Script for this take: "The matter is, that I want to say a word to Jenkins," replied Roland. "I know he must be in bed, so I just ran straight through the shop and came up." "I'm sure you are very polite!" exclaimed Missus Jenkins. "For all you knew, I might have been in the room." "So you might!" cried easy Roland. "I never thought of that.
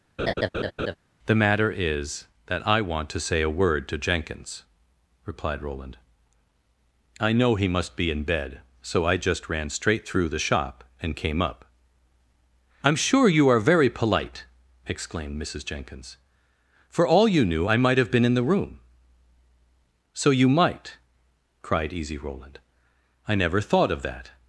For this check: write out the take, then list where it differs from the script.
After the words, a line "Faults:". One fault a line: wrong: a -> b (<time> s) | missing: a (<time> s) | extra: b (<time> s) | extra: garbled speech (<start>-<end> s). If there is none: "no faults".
"The matter is, that I want to say a word to Jenkins," replied Roland. "I know he must be in bed, so I just ran straight through the shop and came up." "I'm sure you are very polite!" exclaimed Missus Jenkins. "For all you knew, I might have been in the room." "So you might!" cried easy Roland. "I never thought of that.
Faults:
no faults